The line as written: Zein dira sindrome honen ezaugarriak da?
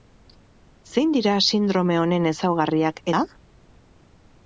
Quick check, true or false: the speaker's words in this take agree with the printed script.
true